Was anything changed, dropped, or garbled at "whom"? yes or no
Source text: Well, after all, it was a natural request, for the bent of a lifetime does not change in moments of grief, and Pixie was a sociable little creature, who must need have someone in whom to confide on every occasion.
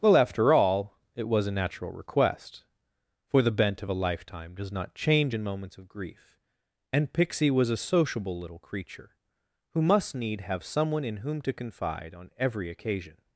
no